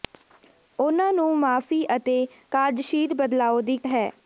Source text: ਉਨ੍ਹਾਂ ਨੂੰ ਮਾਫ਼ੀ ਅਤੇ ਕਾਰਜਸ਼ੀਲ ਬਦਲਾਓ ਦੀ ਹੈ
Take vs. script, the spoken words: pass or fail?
pass